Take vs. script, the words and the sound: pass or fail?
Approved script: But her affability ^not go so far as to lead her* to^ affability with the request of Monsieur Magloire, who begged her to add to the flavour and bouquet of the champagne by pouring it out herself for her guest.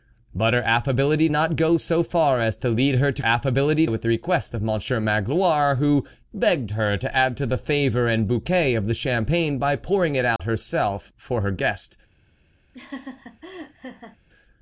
fail